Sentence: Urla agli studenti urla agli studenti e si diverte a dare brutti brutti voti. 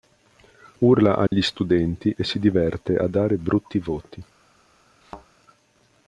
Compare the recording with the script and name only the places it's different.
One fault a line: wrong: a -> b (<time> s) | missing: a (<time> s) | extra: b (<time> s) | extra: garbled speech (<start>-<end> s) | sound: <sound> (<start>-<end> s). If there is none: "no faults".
sound: dropout (1.3-1.3 s)
missing: urla agli studenti (2.1 s)
missing: brutti (3.8 s)
sound: thud (5.0-5.3 s)